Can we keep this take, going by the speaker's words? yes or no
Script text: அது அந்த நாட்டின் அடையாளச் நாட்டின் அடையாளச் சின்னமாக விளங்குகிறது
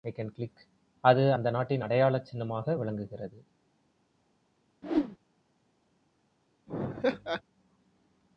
no